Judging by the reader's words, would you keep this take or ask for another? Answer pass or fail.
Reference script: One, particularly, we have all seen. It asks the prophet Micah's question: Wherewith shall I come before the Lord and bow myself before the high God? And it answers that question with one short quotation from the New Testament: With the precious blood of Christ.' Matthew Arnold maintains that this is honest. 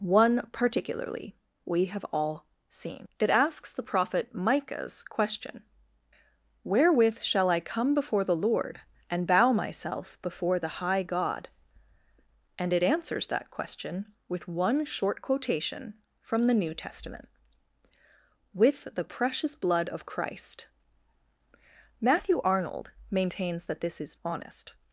pass